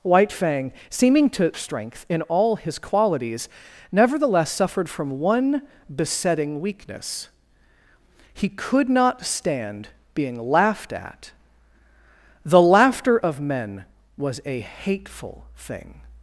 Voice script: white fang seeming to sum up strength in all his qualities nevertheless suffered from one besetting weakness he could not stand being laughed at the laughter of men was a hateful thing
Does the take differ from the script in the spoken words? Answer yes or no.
yes